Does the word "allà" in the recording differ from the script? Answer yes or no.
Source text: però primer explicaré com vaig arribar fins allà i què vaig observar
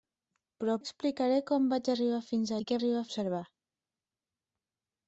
yes